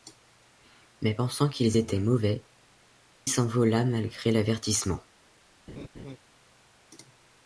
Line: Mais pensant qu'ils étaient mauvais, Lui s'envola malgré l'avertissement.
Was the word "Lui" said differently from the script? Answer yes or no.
yes